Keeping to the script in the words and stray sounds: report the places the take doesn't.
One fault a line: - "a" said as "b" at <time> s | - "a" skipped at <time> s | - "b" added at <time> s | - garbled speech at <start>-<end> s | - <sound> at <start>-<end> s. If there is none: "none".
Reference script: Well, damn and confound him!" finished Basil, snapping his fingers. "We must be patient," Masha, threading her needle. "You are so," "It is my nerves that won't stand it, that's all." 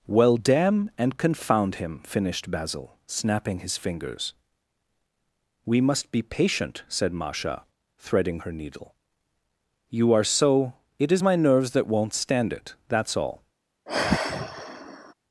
- "said" added at 6.9 s
- sigh at 13.9-15.1 s